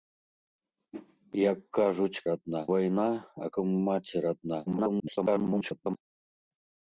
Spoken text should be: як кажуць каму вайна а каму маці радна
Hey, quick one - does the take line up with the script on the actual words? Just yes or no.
no